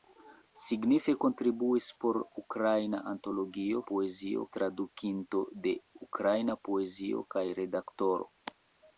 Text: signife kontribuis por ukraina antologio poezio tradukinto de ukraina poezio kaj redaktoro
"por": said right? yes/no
yes